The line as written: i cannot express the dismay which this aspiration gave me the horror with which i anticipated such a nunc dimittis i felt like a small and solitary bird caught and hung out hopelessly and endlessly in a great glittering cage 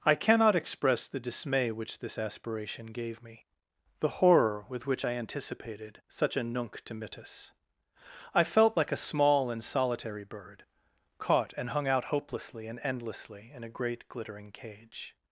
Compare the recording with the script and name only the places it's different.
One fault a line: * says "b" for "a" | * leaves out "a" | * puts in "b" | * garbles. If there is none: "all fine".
all fine